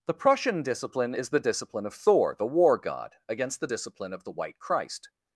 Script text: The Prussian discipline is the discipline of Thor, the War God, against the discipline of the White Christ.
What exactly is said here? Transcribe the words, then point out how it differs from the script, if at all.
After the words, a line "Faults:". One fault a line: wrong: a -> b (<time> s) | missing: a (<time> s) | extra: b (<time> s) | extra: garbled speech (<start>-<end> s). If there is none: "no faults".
The Prussian discipline is the discipline of Thor, the War God, against the discipline of the White Christ.
Faults:
no faults